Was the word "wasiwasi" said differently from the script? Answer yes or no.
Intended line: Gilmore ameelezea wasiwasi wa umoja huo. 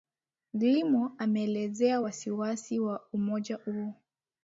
no